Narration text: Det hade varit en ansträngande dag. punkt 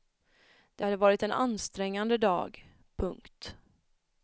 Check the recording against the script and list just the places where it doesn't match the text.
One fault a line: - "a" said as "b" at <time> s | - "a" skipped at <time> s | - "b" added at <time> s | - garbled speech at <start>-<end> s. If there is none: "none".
none